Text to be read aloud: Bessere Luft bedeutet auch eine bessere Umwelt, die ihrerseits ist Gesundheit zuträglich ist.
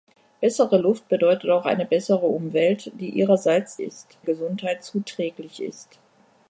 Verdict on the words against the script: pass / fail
pass